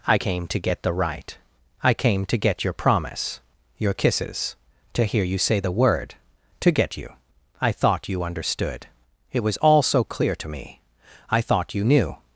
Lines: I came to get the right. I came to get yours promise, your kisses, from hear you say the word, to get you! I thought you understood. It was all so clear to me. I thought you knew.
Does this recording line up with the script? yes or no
no